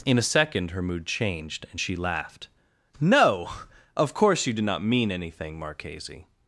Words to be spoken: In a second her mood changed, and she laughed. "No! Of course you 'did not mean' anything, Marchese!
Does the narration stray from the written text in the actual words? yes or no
no